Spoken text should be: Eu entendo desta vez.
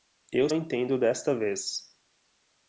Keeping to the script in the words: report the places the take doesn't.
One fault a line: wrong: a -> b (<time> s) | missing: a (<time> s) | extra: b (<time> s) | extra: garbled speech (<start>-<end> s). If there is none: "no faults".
no faults